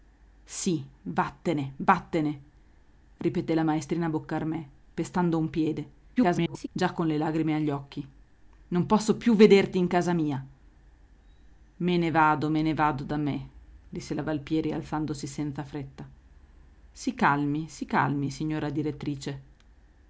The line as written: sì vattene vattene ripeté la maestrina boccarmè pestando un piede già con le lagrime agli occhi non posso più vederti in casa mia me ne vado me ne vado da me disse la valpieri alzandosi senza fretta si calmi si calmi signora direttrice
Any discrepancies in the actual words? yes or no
yes